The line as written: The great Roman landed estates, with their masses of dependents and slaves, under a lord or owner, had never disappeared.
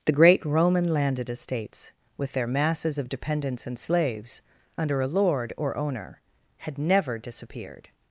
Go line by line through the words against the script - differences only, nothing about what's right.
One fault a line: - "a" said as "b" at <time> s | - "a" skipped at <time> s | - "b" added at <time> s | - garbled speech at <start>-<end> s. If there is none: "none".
none